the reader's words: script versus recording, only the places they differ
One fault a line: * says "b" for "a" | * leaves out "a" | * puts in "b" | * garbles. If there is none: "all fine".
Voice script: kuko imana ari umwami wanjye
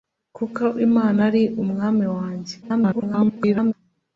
* garbles